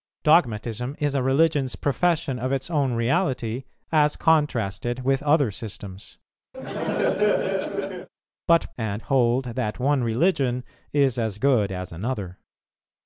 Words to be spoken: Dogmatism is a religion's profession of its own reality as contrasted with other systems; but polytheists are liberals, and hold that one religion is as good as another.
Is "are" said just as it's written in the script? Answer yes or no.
no